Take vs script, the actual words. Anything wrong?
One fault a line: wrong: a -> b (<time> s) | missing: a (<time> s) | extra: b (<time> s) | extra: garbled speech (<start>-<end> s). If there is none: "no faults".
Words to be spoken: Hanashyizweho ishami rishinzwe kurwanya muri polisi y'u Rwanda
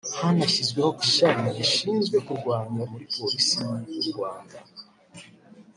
no faults